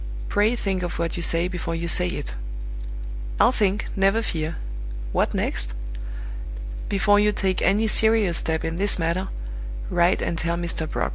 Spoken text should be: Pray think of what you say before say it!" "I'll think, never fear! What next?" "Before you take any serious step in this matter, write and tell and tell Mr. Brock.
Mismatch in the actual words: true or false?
true